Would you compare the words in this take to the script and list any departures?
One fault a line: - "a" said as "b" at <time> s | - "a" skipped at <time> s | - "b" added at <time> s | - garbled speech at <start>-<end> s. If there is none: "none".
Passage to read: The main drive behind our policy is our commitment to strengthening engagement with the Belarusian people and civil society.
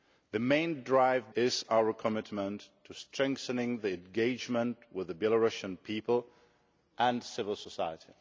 - "behind our policy" skipped at 1.3 s